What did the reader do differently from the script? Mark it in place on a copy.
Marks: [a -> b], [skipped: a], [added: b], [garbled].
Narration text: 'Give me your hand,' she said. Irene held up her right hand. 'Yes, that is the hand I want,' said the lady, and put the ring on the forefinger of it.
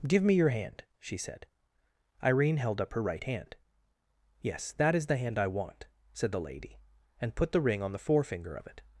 'Give me your hand,' she said. Irene held up her right hand. 'Yes, that is the hand I want,' said the lady, and put the ring on the forefinger of it.